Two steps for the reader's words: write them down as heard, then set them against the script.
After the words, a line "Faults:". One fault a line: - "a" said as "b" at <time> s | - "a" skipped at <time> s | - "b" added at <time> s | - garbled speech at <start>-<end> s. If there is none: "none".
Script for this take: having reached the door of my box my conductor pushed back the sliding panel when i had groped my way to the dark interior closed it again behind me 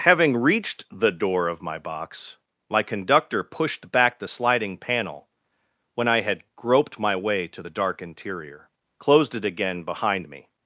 having reached the door of my box my conductor pushed back the sliding panel when i had groped my way to the dark interior closed it again behind me
Faults:
none